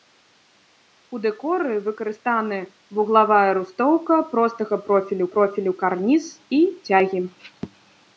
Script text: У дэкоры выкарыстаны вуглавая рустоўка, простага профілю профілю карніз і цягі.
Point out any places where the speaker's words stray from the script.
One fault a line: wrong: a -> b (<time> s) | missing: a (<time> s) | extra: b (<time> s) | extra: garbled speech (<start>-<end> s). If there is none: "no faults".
no faults